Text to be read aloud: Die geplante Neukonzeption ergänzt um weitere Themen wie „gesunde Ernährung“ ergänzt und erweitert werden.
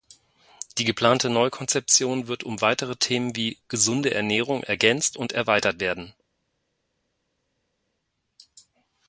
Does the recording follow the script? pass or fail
fail